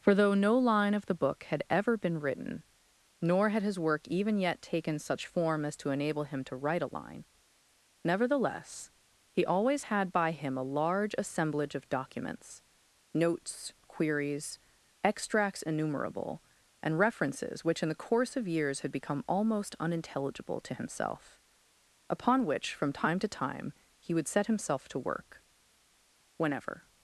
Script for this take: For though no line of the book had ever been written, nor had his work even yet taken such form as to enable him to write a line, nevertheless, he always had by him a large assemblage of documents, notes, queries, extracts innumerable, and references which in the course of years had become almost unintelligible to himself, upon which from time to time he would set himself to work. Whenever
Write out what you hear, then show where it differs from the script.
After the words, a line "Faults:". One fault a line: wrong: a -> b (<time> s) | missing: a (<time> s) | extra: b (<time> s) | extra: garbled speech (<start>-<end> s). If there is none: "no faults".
For though no line of the book had ever been written, nor had his work even yet taken such form as to enable him to write a line, nevertheless, he always had by him a large assemblage of documents, notes, queries, extracts innumerable, and references which in the course of years had become almost unintelligible to himself, upon which from time to time he would set himself to work. Whenever
Faults:
no faults